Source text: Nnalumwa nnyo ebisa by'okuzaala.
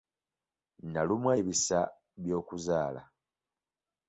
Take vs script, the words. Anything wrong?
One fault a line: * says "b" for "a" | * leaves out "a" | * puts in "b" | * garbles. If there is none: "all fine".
* leaves out "nnyo"